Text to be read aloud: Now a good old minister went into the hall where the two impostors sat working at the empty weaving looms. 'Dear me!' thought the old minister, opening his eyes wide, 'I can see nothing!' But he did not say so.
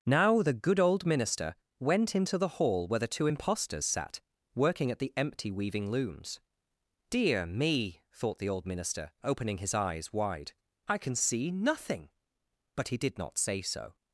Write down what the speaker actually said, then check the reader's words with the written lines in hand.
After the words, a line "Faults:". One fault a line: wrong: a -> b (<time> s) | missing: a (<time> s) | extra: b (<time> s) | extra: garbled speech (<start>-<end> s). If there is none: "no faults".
Now the good old minister went into the hall where the two impostors sat working at the empty weaving looms. 'Dear me!' thought the old minister, opening his eyes wide, 'I can see nothing!' But he did not say so.
Faults:
wrong: a -> the (0.4 s)